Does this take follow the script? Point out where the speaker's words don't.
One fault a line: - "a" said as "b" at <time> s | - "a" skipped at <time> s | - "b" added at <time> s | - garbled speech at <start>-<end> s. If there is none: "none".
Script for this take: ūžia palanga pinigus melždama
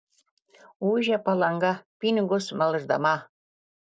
none